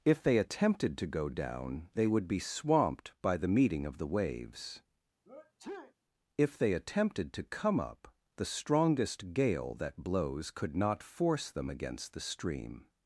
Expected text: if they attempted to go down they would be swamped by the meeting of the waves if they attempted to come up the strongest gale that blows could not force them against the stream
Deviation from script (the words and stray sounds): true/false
true